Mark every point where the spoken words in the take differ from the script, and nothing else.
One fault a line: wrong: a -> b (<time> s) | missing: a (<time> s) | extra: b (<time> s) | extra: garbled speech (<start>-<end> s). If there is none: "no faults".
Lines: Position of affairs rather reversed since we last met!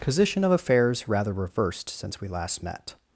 no faults